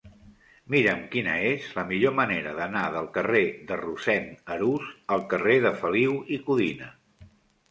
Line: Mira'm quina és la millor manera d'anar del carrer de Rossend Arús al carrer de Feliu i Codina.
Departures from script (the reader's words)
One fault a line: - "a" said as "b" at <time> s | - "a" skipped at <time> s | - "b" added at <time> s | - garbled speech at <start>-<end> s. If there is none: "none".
none